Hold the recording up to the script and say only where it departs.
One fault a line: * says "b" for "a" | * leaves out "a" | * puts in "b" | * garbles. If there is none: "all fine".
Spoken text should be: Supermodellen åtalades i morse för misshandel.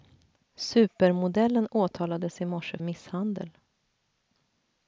* leaves out "för"